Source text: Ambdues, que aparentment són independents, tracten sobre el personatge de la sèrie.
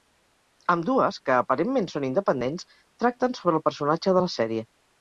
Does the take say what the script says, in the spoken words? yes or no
yes